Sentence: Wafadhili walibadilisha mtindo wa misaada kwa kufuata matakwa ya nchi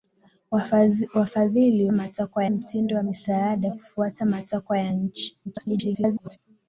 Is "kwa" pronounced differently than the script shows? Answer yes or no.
yes